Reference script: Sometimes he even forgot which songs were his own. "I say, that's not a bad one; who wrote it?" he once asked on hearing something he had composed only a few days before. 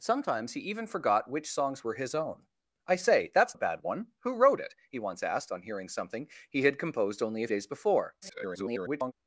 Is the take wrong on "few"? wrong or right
wrong